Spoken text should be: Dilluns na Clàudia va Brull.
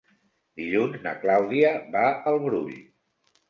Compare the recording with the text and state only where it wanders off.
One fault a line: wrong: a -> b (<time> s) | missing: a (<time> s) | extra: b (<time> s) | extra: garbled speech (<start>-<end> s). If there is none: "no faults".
extra: al (2.3 s)